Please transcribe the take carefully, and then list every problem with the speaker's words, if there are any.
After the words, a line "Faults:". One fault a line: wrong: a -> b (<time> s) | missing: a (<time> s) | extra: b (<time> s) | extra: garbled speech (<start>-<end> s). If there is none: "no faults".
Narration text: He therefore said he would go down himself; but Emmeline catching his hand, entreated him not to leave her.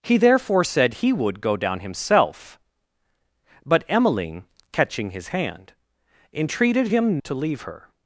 He therefore said he would go down himself; but Emmeline catching his hand, entreated him to leave her.
Faults:
missing: not (7.2 s)